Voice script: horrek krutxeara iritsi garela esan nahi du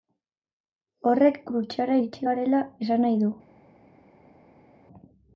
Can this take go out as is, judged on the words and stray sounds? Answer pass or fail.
pass